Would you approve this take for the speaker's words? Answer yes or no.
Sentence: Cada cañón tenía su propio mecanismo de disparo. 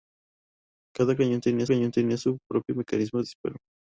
no